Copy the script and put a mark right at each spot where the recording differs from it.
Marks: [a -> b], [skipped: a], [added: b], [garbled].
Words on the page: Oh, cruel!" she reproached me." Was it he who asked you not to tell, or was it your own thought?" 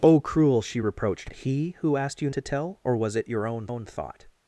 Oh, cruel!" she reproached [skipped: me." Was it] he who asked you [skipped: not] to tell, or was it your own [added: own] thought?"